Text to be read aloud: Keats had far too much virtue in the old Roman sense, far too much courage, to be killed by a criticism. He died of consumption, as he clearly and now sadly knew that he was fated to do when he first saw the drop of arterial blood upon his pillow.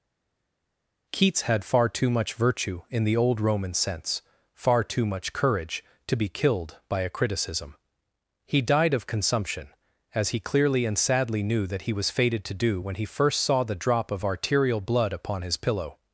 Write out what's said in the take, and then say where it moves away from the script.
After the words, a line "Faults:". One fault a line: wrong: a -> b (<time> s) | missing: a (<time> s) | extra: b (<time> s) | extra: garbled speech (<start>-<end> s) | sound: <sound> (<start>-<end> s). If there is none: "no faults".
Keats had far too much virtue in the old Roman sense, far too much courage, to be killed by a criticism. He died of consumption, as he clearly and sadly knew that he was fated to do when he first saw the drop of arterial blood upon his pillow.
Faults:
missing: now (11.0 s)